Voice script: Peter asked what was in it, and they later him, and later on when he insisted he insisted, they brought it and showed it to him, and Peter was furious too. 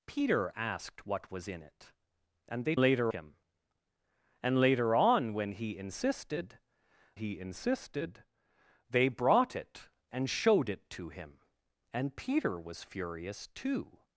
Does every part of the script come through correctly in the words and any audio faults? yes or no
yes